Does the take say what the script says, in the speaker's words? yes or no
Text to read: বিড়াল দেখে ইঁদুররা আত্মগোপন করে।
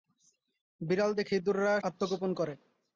yes